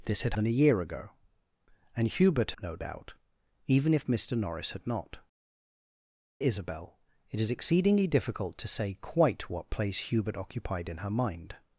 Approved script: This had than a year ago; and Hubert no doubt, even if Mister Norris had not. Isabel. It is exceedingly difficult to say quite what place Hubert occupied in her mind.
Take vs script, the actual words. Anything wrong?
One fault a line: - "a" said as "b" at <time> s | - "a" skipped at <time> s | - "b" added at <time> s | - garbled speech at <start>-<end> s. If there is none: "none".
none